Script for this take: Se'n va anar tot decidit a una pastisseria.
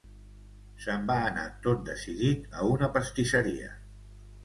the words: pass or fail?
pass